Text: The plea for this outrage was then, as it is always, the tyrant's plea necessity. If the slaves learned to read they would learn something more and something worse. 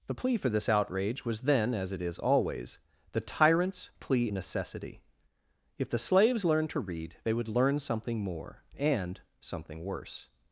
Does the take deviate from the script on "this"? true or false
false